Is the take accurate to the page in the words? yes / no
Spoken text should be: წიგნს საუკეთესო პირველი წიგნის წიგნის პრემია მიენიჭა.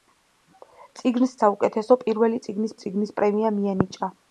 yes